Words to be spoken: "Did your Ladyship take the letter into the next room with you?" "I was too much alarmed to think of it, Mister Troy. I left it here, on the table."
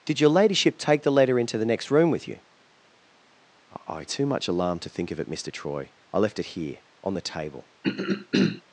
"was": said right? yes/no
no